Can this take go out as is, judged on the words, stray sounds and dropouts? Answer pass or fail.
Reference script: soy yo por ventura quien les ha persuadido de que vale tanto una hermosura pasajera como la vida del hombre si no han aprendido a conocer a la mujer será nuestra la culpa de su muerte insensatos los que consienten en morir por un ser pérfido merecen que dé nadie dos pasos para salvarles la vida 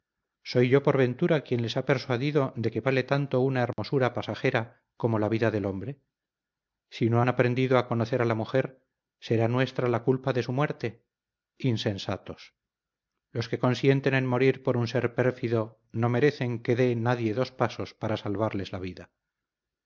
fail